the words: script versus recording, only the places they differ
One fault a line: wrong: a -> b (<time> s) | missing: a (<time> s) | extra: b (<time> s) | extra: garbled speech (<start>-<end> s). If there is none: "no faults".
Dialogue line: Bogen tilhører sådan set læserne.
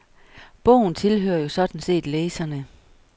extra: jo (1.4 s)